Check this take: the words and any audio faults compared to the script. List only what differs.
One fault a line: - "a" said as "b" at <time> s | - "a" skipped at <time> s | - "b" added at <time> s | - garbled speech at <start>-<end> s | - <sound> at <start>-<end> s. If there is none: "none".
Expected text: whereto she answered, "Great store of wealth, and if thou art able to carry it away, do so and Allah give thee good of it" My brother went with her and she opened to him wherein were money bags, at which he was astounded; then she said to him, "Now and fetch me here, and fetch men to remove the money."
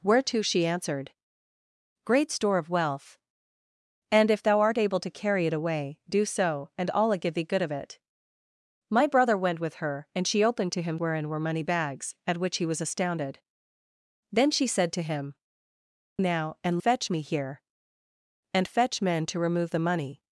none